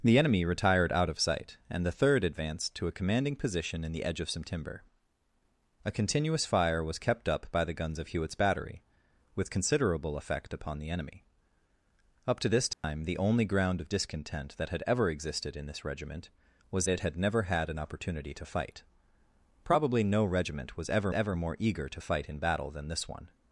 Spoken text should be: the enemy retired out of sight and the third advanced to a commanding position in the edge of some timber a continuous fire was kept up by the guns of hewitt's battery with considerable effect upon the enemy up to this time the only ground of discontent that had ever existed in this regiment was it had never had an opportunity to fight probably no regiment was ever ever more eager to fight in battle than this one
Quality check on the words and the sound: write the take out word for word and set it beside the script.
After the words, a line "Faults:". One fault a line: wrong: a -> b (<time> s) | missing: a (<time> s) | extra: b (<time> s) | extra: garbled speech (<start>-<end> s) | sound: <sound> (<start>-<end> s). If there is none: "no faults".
the enemy retired out of sight and the third advanced to a commanding position in the edge of some timber a continuous fire was kept up by the guns of hewitt's battery with considerable effect upon the enemy up to this time the only ground of discontent that had ever existed in this regiment was it had never had an opportunity to fight probably no regiment was ever ever more eager to fight in battle than this one
Faults:
sound: dropout (12.7-12.8 s)